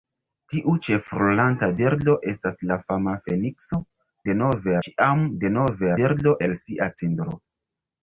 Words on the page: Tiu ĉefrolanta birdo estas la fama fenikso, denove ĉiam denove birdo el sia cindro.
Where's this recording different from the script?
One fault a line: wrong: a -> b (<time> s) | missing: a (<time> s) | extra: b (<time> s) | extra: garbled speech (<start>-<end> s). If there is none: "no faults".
no faults